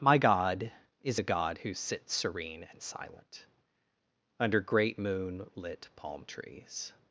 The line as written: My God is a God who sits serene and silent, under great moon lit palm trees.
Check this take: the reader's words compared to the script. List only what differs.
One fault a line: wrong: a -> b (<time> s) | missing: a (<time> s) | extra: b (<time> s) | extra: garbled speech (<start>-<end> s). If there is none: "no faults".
no faults